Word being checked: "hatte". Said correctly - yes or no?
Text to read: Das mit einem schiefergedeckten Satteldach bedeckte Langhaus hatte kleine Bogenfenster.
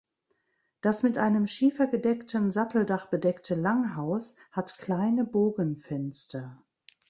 no